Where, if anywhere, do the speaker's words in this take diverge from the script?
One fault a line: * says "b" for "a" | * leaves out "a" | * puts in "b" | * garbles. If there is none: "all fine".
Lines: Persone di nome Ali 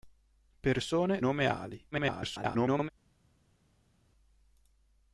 * leaves out "di"
* garbles